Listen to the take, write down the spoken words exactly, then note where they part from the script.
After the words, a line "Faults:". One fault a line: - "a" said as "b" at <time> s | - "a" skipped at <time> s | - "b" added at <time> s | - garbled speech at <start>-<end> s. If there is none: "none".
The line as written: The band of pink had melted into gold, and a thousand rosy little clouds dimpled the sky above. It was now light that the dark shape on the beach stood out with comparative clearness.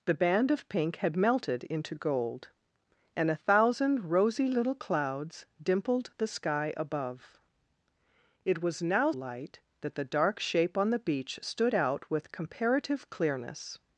The band of pink had melted into gold, and a thousand rosy little clouds dimpled the sky above. It was now light that the dark shape on the beach stood out with comparative clearness.
Faults:
none